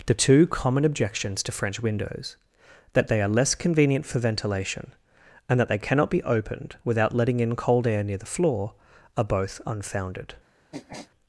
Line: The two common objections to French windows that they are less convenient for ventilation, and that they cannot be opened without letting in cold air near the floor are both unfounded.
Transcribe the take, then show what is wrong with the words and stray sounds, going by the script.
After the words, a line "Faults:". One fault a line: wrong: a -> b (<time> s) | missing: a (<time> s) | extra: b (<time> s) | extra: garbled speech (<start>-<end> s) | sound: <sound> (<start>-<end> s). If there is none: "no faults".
The two common objections to French windows that they are less convenient for ventilation, and that they cannot be opened without letting in cold air near the floor are both unfounded.
Faults:
sound: sniff (10.7-11.1 s)